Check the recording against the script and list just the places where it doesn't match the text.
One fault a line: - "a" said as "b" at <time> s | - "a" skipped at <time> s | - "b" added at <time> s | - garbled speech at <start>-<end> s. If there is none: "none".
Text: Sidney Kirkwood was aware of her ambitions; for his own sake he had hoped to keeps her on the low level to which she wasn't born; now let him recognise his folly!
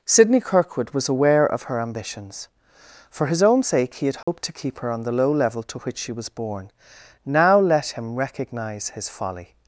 - "keeps" said as "keep" at 4.5 s
- "wasn't" said as "was" at 6.1 s